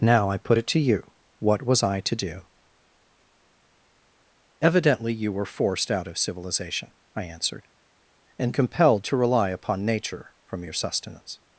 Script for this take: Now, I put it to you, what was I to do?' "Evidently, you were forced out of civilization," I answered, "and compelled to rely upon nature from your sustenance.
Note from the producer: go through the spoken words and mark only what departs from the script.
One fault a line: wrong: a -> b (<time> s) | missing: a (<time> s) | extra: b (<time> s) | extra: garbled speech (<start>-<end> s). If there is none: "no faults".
no faults